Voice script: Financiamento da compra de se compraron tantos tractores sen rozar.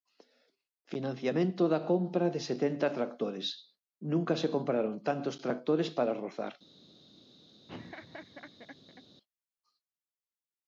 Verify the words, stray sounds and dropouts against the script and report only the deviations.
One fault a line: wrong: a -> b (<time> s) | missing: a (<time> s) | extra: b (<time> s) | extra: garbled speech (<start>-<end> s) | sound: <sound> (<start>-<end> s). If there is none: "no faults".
extra: setenta tractores nunca (2.5 s)
wrong: sen -> para (6.0 s)
sound: laugh (7.7-9.0 s)